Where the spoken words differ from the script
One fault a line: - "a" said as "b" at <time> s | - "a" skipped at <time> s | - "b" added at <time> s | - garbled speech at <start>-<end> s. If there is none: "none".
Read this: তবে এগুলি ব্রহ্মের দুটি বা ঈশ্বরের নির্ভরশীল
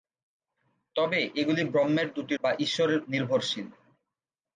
none